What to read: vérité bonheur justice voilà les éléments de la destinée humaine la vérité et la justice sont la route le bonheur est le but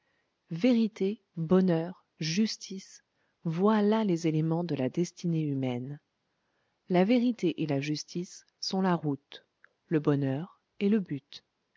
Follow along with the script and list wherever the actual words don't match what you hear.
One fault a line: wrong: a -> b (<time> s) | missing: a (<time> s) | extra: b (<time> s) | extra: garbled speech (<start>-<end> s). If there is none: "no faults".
no faults